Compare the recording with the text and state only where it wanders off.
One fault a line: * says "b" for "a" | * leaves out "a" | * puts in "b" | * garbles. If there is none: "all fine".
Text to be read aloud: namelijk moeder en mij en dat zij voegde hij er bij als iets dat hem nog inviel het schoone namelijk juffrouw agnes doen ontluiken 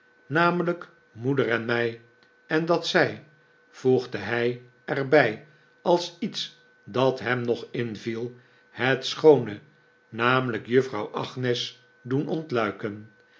all fine